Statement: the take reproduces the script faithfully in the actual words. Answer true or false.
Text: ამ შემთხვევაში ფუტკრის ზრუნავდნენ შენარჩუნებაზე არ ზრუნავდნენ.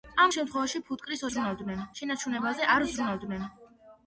true